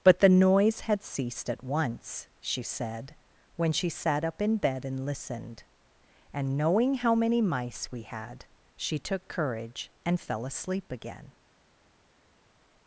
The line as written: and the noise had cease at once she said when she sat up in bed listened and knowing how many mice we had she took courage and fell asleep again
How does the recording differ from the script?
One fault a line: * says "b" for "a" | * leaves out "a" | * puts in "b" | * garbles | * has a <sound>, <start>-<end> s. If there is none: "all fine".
* says "but" for "and"
* says "ceased" for "cease"
* puts in "and"